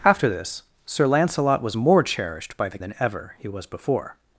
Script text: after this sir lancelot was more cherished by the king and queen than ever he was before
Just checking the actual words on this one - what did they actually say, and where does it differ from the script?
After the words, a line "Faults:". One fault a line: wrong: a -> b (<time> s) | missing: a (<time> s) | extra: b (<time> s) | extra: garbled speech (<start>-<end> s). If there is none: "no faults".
after this sir lancelot was more cherished by the than ever he was before
Faults:
missing: king and queen (2.8 s)